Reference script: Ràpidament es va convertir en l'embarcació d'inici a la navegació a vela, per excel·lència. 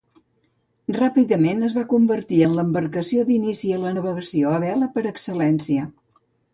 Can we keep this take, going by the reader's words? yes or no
yes